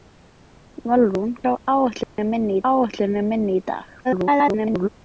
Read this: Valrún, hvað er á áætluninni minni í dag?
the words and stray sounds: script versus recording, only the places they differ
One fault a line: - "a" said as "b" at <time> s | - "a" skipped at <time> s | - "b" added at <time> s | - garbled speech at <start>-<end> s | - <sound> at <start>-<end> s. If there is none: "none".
- "hvað" skipped at 1.4 s
- dropout at 2.0-2.2 s
- "áætluninni minni" added at 2.7 s
- garbled speech at 4.0-4.9 s